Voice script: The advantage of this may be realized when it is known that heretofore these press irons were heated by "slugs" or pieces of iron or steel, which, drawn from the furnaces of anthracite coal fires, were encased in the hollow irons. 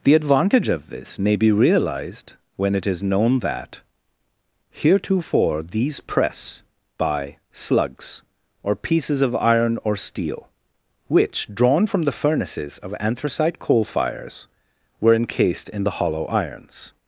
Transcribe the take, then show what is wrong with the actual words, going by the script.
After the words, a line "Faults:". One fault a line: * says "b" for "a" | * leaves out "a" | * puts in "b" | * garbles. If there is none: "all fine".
The advantage of this may be realized when it is known that heretofore these press by "slugs" or pieces of iron or steel, which, drawn from the furnaces of anthracite coal fires, were encased in the hollow irons.
Faults:
* leaves out "irons were heated"